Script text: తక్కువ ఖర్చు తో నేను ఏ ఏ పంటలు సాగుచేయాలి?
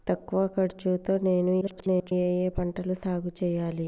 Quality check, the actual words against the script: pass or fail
fail